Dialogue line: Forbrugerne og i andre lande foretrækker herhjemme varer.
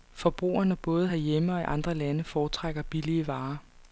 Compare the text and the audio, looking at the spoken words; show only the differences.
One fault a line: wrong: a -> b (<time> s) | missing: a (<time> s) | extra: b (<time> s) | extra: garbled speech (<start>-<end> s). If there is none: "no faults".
extra: både herhjemme (0.8 s)
wrong: herhjemme -> billige (2.8 s)